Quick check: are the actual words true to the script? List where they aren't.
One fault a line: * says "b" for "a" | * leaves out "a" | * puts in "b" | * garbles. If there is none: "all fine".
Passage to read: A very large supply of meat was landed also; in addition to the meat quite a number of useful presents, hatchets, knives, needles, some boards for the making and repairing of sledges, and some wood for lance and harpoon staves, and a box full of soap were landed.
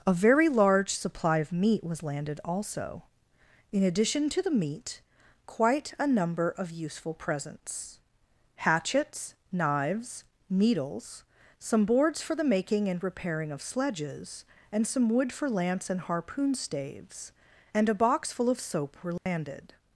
all fine